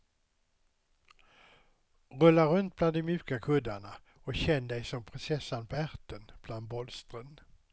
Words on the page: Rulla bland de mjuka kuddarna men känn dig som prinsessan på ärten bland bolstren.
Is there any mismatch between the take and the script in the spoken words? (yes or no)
yes